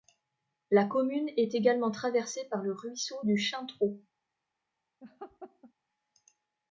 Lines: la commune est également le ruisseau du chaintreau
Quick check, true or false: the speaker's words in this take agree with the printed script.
false